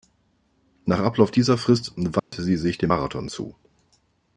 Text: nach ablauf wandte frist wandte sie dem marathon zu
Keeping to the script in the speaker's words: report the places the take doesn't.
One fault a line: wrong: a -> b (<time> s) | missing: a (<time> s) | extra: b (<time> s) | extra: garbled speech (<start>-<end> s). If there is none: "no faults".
wrong: wandte -> dieser (1.3 s)
extra: sich (2.5 s)